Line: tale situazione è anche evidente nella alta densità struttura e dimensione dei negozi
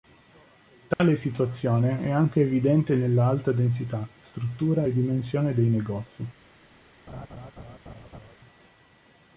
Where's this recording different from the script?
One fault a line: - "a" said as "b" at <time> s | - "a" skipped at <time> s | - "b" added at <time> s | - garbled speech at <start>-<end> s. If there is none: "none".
none